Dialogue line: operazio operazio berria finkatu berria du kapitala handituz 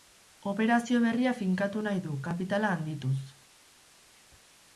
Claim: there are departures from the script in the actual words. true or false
true